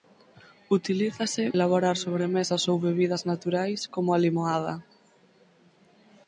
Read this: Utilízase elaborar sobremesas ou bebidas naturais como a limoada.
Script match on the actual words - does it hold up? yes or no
yes